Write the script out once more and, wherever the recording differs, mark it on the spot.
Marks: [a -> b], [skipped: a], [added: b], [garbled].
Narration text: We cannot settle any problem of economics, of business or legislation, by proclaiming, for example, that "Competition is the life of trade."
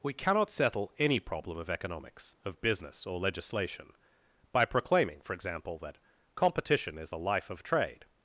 We cannot settle any problem of economics, of business or legislation, by proclaiming, for example, that "Competition is the life of trade."